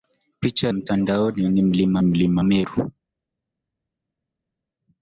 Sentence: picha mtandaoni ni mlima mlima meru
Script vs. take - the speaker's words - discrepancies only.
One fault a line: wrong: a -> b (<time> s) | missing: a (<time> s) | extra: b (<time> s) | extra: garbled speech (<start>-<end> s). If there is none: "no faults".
no faults